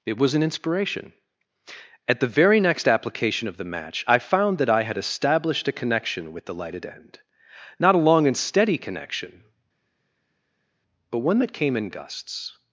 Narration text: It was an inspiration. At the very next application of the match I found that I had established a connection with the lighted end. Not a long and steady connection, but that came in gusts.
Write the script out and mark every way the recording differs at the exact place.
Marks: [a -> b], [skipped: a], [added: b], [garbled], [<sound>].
It was an inspiration. At the very next application of the match I found that I had established a connection with the lighted end. Not a long and steady connection, but [added: one] that came in gusts.